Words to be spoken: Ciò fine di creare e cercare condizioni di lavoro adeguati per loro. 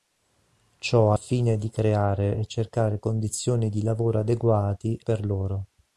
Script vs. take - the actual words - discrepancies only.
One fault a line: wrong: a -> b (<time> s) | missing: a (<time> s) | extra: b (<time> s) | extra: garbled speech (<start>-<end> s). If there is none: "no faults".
no faults